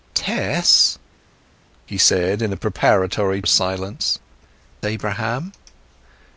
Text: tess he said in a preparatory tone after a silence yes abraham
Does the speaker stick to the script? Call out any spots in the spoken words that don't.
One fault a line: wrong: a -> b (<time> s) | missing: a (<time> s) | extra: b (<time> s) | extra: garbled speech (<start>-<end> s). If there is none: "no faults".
missing: tone after (3.4 s)
missing: yes (4.2 s)